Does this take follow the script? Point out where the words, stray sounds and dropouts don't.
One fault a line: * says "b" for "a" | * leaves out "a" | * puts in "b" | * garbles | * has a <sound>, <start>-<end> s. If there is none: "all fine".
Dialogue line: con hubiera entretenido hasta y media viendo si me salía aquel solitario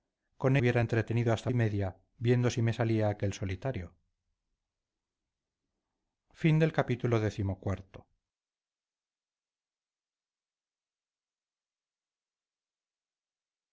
all fine